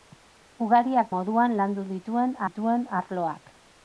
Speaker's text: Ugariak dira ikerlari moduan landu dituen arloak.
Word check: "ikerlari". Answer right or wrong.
wrong